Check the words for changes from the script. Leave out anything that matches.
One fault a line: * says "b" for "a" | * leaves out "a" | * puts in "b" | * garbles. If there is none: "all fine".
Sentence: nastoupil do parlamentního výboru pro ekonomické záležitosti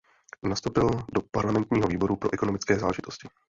all fine